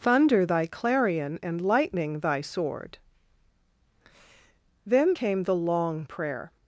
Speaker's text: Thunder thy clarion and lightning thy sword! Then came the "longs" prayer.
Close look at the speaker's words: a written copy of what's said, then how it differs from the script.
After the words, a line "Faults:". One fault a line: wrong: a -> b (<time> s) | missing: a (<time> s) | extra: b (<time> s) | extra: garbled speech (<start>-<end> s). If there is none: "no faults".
Thunder thy clarion and lightning thy sword! Then came the "long" prayer.
Faults:
wrong: longs -> long (5.6 s)